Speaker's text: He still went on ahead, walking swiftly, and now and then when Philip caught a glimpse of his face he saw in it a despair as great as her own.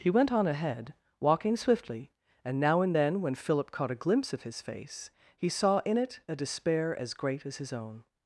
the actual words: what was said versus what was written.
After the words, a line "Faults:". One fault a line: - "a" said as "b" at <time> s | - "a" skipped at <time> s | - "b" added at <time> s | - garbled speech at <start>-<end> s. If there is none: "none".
He went on ahead, walking swiftly, and now and then when Philip caught a glimpse of his face he saw in it a despair as great as his own.
Faults:
- "still" skipped at 0.1 s
- "her" said as "his" at 7.6 s